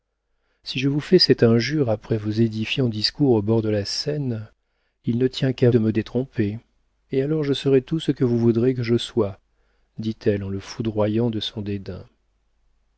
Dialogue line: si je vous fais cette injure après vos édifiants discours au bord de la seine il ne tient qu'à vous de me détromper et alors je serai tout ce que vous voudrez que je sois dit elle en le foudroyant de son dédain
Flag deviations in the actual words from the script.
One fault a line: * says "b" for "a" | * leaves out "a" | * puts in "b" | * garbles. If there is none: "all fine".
* leaves out "vous"